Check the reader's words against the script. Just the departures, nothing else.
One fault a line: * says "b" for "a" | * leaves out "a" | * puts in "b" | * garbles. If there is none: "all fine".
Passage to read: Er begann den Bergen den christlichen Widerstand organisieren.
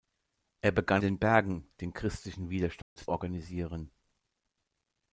all fine